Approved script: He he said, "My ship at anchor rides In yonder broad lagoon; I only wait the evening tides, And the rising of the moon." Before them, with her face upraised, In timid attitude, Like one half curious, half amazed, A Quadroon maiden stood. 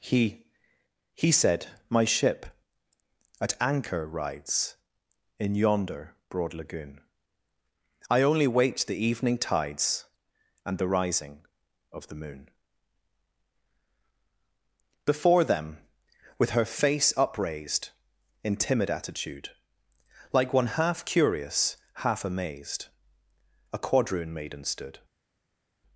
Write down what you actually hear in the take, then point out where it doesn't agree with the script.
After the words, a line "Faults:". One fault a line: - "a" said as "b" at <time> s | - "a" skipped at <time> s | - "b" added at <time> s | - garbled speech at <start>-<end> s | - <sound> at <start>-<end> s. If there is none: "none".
He he said, "My ship at anchor rides In yonder broad lagoon; I only wait the evening tides, And the rising of the moon." Before them, with her face upraised, In timid attitude, Like one half curious, half amazed, A Quadroon maiden stood.
Faults:
none